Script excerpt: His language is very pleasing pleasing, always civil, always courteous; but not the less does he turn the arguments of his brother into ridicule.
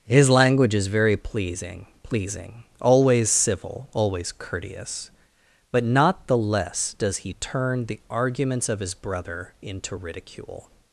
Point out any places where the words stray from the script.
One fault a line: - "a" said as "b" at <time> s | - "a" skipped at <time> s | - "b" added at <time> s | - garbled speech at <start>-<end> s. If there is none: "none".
none